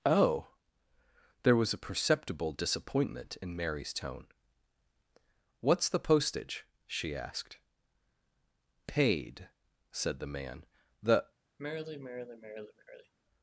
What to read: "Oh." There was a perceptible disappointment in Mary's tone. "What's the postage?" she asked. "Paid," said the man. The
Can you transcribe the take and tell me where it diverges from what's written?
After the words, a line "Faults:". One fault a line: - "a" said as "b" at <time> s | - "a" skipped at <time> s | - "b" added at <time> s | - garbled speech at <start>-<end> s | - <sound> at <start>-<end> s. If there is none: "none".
"Oh." There was a perceptible disappointment in Mary's tone. "What's the postage?" she asked. "Paid," said the man. The
Faults:
- sigh at 11.6-13.1 s